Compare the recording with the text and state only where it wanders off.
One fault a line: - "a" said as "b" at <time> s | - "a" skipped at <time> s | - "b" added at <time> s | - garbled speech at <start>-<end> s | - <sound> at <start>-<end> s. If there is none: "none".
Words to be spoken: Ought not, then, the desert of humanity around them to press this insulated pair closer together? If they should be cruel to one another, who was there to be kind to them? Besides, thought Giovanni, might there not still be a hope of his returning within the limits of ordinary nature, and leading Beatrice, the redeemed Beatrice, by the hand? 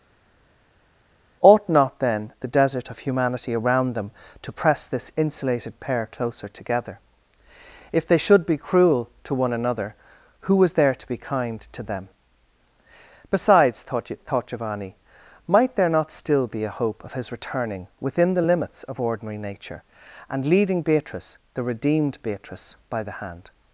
- "thought" added at 14.3 s